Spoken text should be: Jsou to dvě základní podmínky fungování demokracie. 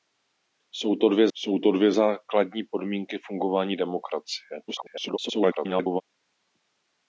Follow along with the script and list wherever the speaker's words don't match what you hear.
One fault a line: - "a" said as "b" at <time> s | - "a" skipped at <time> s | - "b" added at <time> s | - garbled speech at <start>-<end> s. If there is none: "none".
- "jsou to dvě" added at 1.3 s
- garbled speech at 4.7-6.0 s